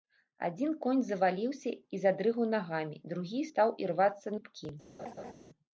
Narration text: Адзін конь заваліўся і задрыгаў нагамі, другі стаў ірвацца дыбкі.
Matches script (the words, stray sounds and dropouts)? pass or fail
fail